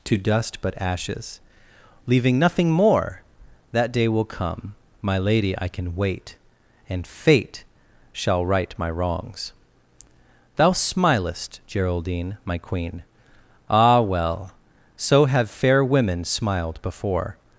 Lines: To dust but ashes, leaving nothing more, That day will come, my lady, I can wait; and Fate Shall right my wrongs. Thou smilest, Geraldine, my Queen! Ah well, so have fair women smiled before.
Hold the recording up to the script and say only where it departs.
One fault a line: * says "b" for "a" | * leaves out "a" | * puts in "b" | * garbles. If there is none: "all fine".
all fine